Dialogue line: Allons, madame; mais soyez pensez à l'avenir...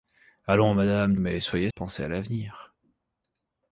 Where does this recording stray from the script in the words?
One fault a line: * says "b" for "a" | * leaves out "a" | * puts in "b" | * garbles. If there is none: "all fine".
all fine